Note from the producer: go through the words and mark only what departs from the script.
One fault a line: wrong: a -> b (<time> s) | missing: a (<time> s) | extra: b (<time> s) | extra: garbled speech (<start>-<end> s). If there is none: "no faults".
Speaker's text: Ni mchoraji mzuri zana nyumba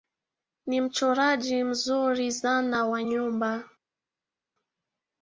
extra: wa (2.9 s)